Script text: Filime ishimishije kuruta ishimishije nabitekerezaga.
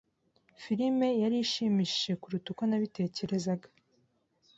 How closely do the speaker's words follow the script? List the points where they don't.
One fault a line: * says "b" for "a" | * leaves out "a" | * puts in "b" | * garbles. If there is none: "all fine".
* puts in "yari"
* says "uko" for "ishimishije"